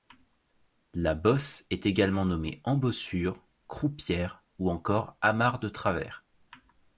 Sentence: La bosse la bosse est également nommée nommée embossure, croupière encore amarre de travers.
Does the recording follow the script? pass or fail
fail